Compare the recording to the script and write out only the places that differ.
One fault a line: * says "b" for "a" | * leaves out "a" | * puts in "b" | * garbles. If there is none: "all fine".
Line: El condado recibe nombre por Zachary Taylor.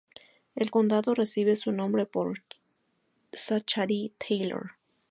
* puts in "su"